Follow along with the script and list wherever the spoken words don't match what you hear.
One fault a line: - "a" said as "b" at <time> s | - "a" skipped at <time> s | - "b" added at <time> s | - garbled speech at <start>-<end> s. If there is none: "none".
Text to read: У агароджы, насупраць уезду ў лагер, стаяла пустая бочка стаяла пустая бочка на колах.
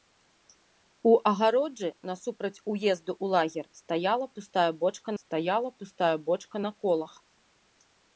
none